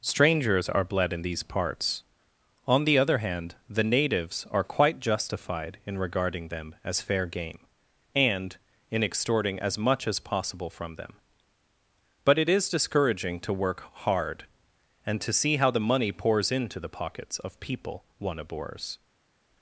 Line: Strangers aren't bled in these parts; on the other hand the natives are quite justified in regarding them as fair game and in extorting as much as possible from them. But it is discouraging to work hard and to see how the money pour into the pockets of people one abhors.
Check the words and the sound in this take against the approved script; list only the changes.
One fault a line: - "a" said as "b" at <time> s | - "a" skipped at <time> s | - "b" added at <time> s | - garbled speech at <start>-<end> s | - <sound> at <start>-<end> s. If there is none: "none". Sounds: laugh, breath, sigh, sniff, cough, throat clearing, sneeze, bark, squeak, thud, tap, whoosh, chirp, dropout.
- "aren't" said as "are" at 0.7 s
- "pour" said as "pours" at 16.1 s